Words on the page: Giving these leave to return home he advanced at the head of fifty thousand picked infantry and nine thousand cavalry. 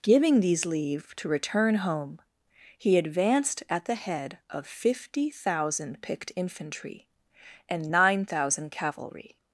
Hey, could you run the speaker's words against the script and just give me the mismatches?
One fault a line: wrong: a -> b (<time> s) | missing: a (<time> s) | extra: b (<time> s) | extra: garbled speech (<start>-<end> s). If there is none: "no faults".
no faults